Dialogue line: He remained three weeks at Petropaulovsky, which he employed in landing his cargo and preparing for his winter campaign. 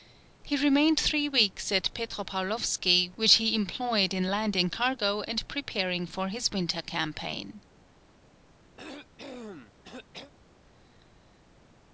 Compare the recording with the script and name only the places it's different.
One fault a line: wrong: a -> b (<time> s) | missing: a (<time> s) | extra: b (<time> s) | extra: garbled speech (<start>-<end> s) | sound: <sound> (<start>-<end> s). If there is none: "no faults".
missing: his (4.7 s)
sound: cough (8.8-10.3 s)